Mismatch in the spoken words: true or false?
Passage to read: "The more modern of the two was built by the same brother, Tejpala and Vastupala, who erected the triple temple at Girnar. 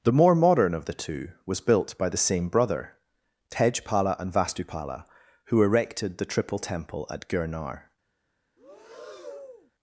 false